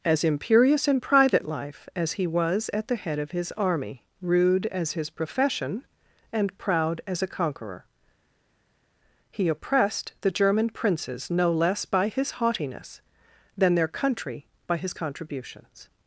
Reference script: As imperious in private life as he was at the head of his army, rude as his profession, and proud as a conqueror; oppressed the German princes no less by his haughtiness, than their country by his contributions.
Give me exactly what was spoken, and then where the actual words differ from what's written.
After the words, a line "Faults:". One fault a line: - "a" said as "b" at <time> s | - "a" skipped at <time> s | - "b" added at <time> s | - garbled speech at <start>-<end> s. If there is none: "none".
As imperious in private life as he was at the head of his army, rude as his profession, and proud as a conqueror; he oppressed the German princes no less by his haughtiness, than their country by his contributions.
Faults:
- "he" added at 9.3 s